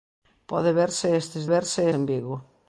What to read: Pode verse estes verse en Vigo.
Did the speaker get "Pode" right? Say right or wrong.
right